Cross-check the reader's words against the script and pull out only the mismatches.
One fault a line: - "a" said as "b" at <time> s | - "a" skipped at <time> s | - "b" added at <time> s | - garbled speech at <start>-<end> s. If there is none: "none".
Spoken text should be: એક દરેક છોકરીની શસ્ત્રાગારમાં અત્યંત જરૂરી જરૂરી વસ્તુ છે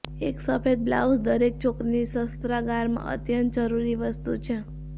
- "સફેદ બ્લાઉઝ" added at 0.4 s
- "જરૂરી" skipped at 4.0 s